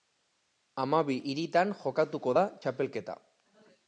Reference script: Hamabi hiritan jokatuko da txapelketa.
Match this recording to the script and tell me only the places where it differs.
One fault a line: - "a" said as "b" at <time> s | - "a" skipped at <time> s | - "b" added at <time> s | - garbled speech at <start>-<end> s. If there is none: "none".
none